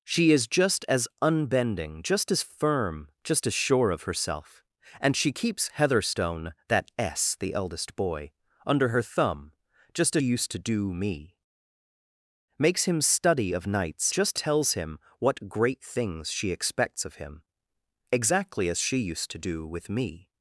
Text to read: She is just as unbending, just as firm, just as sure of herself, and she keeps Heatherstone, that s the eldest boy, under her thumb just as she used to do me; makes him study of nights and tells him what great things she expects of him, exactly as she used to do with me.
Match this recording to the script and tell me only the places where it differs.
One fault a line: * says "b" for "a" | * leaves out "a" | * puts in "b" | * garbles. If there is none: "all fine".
* leaves out "she"
* says "just" for "and"